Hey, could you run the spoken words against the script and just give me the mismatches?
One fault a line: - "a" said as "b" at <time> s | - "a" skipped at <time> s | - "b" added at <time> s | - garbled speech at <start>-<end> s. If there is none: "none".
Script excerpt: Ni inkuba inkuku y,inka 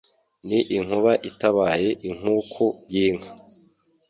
- "itabaye" added at 1.3 s